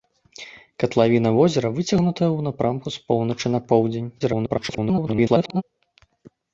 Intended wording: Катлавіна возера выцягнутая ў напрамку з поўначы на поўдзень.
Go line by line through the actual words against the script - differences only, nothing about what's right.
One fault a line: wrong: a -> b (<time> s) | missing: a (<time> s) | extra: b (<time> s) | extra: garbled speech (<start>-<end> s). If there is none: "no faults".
extra: garbled speech (4.2-5.6 s)